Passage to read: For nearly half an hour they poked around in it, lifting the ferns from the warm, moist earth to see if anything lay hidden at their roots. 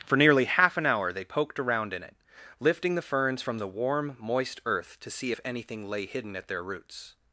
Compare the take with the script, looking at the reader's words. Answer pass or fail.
pass